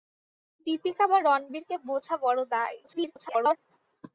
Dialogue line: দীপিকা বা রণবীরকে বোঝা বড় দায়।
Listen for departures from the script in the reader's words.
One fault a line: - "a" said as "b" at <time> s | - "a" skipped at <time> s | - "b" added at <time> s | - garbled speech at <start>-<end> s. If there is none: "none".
- garbled speech at 2.8-3.6 s